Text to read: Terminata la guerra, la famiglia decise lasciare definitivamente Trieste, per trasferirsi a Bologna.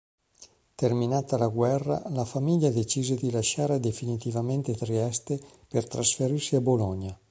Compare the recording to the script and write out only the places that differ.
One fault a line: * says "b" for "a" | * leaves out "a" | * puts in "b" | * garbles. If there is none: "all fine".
* puts in "di"